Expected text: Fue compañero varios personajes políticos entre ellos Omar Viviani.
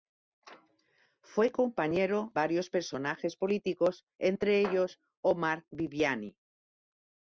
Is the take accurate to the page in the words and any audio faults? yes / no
yes